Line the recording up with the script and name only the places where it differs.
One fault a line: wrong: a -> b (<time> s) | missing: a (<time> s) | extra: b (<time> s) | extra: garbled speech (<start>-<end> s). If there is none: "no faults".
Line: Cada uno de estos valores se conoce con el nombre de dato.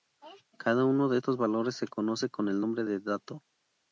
no faults